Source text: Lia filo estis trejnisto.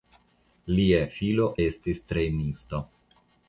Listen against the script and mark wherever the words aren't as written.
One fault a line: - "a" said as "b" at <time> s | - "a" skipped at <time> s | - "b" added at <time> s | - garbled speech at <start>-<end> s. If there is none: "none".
none